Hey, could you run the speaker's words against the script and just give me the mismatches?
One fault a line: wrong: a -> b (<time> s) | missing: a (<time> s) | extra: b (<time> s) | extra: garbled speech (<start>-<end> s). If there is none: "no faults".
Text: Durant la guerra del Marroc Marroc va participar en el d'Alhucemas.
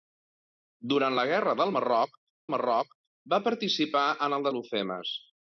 no faults